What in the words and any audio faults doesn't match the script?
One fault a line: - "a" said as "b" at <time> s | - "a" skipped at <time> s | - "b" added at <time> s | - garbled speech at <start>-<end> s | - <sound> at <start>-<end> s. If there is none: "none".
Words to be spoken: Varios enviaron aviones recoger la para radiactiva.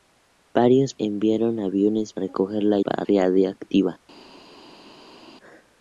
none